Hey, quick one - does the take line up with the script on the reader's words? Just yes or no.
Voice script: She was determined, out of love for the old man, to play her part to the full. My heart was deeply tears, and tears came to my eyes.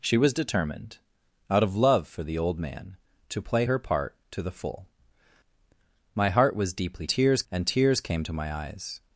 yes